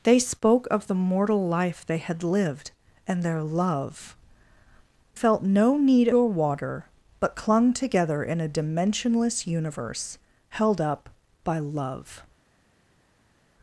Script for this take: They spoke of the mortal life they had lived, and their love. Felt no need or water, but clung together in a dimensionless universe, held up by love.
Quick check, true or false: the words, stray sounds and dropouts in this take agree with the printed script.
true